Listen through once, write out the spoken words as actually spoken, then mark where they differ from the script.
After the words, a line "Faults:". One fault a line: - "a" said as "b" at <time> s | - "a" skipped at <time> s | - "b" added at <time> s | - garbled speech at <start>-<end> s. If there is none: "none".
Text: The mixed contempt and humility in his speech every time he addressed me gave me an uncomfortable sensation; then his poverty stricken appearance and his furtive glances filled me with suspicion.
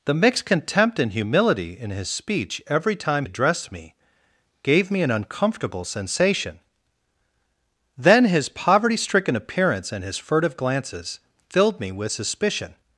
The mixed contempt and humility in his speech every time addressed me gave me an uncomfortable sensation; then his poverty stricken appearance and his furtive glances filled me with suspicion.
Faults:
- "he" skipped at 3.3 s